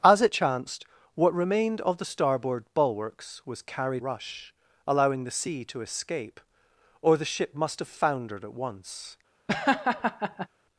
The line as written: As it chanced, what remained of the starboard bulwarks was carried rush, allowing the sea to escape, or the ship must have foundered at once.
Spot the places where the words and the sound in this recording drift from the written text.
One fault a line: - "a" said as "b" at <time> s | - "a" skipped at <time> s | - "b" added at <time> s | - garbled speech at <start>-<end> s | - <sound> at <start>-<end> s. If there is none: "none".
- laugh at 9.5-10.5 s